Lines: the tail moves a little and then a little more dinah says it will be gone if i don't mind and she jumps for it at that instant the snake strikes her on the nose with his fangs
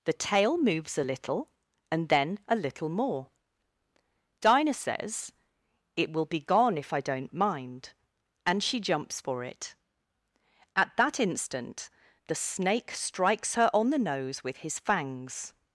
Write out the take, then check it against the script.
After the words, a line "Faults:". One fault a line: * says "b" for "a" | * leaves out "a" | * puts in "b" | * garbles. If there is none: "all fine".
the tail moves a little and then a little more dinah says it will be gone if i don't mind and she jumps for it at that instant the snake strikes her on the nose with his fangs
Faults:
all fine